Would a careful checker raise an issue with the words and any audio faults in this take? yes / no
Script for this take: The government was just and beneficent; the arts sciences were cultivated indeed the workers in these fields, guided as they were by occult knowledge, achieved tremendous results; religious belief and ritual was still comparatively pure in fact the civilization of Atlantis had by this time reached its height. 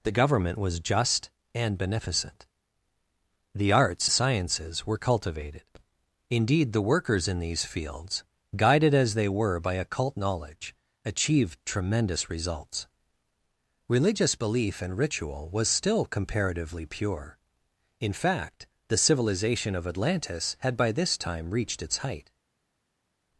no